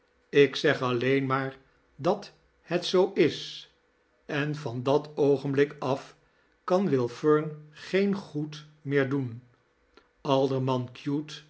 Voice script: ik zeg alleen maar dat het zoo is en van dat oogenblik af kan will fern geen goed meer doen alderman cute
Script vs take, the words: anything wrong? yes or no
no